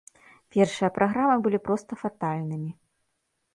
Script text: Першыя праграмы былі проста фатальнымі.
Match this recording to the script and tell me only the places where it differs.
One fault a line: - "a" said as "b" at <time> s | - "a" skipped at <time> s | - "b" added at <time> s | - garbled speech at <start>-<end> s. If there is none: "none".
none